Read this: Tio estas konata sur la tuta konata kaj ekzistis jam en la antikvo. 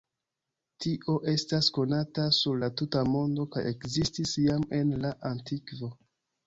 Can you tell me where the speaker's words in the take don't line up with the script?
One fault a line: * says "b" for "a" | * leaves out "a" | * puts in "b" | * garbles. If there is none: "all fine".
* says "mondo" for "konata"